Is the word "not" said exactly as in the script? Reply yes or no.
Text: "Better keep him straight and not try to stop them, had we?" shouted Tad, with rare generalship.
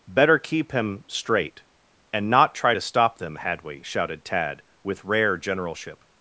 yes